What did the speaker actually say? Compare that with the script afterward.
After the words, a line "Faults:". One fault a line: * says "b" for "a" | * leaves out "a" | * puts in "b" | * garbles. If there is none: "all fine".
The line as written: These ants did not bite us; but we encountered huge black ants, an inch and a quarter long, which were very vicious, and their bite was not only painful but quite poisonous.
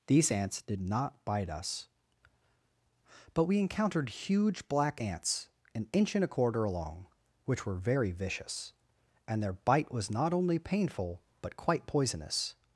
These ants did not bite us; but we encountered huge black ants, an inch and a quarter long, which were very vicious, and their bite was not only painful but quite poisonous.
Faults:
all fine